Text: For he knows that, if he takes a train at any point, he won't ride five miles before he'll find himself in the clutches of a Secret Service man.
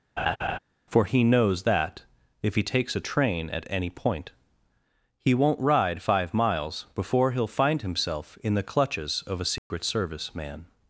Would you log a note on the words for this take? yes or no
no